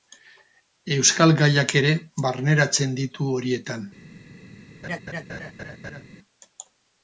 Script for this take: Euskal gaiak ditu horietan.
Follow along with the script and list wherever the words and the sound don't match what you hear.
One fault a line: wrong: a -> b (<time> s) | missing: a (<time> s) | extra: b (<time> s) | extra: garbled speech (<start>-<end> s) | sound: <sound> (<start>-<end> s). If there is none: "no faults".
extra: ere barneratzen (1.8 s)
sound: laugh (4.8-6.0 s)